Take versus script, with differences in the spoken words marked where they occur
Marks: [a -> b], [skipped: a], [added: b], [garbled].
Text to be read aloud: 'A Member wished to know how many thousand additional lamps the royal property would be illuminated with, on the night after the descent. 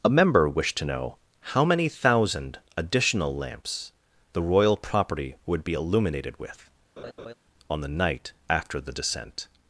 'A Member wished to know how many thousand additional lamps the royal property would be illuminated with, on the night after the descent.